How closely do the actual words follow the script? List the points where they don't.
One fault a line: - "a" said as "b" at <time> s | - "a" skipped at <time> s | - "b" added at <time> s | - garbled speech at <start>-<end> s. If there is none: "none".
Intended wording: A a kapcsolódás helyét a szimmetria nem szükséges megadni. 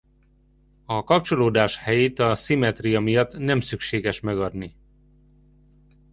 - "a" skipped at 1.1 s
- "miatt" added at 3.0 s